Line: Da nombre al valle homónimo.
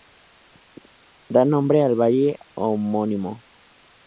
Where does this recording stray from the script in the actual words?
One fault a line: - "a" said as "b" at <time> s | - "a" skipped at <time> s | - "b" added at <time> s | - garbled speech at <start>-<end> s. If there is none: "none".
none